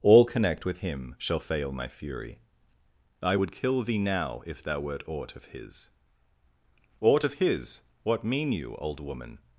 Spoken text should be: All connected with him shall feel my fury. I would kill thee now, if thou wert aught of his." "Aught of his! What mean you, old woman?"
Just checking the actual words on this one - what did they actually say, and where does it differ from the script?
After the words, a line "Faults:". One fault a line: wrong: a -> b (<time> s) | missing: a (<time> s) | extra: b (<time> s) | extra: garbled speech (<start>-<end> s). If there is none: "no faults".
All connect with him shall fail my fury. I would kill thee now, if thou wert aught of his." "Aught of his! What mean you, old woman?"
Faults:
wrong: connected -> connect (0.2 s)
wrong: feel -> fail (1.4 s)